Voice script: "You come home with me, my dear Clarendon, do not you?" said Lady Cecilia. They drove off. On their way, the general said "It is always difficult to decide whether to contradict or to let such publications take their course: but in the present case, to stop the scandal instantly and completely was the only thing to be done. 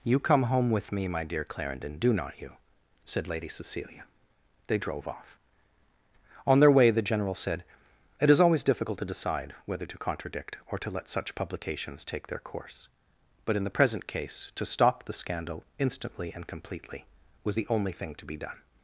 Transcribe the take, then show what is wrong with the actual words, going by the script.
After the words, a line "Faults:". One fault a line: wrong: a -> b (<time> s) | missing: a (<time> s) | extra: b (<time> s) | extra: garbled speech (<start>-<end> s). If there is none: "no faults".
"You come home with me, my dear Clarendon, do not you?" said Lady Cecilia. They drove off. On their way, the general said "It is always difficult to decide whether to contradict or to let such publications take their course: but in the present case, to stop the scandal instantly and completely was the only thing to be done.
Faults:
no faults